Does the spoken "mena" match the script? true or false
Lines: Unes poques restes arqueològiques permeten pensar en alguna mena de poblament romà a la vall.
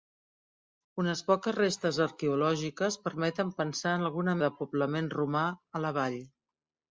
false